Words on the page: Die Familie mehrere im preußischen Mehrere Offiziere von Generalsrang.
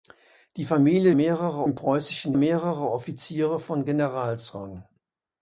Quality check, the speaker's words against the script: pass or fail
pass